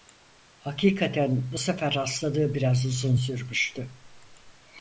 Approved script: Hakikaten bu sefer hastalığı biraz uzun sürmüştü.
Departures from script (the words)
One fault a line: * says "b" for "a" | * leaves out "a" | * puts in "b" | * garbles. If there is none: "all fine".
all fine